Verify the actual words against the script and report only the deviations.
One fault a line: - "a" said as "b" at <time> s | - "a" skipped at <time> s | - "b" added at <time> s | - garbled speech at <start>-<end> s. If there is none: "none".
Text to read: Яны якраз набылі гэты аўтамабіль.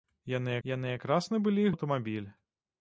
- "яны" added at 0.7 s
- "гэты" skipped at 1.6 s